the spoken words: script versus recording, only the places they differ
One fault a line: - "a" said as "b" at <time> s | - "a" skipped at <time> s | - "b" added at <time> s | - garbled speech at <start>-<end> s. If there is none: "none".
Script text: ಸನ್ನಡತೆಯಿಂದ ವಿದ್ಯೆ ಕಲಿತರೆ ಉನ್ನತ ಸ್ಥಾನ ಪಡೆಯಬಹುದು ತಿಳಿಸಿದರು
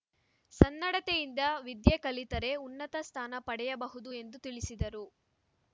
- "ಎಂದು" added at 4.1 s